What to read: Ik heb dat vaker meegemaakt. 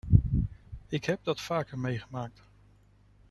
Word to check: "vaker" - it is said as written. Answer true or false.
true